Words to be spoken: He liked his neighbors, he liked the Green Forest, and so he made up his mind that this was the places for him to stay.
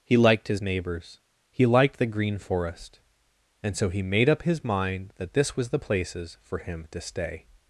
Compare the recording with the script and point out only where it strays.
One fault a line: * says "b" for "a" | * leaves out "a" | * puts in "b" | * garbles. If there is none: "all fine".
all fine